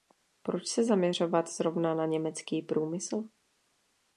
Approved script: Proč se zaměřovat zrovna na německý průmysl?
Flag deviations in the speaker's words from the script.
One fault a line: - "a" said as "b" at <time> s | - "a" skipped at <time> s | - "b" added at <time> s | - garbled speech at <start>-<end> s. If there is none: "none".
none